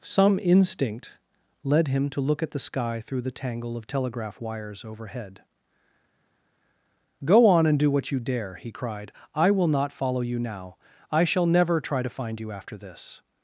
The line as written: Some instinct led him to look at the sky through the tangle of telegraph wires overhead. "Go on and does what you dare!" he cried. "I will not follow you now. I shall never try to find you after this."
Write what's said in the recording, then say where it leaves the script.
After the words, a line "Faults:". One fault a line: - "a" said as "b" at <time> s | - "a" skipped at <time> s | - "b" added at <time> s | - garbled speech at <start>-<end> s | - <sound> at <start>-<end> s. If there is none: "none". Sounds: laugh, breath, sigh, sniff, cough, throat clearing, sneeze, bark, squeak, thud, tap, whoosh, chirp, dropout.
Some instinct led him to look at the sky through the tangle of telegraph wires overhead. "Go on and do what you dare!" he cried. "I will not follow you now. I shall never try to find you after this."
Faults:
- "does" said as "do" at 7.8 s